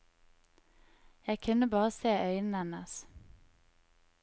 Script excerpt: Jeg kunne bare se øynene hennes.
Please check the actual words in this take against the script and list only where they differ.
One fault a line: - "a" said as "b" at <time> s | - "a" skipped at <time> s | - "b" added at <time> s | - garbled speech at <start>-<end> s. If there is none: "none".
none